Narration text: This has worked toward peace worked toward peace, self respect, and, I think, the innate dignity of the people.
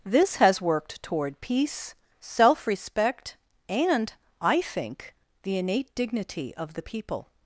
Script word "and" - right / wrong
right